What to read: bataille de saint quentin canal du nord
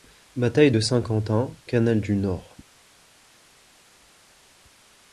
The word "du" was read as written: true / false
true